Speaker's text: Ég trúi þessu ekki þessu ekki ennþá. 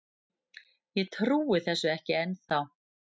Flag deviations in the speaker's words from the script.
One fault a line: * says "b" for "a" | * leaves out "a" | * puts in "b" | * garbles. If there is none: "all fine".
* leaves out "þessu ekki"